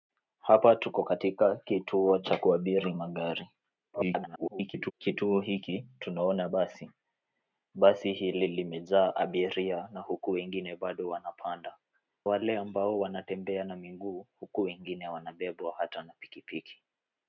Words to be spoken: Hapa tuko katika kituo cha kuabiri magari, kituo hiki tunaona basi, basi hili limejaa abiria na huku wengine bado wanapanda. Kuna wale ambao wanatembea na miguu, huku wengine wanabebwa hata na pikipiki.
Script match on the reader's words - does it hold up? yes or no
no